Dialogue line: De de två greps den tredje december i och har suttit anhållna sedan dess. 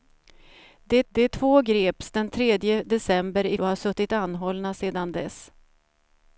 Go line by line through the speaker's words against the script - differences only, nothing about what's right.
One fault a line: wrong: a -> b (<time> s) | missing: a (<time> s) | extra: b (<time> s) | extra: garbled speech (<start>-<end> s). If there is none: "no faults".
no faults